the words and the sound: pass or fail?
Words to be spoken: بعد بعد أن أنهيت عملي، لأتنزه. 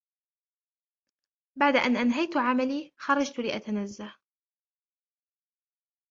fail